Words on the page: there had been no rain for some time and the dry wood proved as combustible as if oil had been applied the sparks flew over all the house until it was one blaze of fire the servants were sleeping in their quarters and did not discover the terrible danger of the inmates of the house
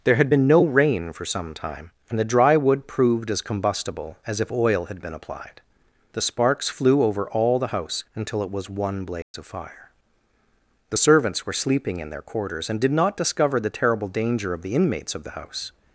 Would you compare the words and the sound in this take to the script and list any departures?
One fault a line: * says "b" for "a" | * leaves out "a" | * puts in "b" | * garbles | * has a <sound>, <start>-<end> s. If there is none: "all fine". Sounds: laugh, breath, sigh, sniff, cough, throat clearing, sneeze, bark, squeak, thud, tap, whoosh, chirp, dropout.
* has a dropout, 9.2-9.3 s